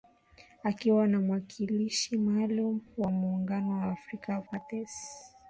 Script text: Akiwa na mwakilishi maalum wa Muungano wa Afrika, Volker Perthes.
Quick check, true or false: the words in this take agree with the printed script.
false